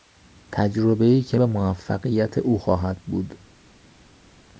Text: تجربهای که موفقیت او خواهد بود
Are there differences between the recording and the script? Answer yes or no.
no